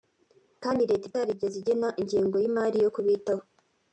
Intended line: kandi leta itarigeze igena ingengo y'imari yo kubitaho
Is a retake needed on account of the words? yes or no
no